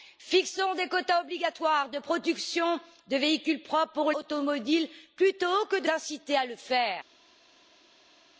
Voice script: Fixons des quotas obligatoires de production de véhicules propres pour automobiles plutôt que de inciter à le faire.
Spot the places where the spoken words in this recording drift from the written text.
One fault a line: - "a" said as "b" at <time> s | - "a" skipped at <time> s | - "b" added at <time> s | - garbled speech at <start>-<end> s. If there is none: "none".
none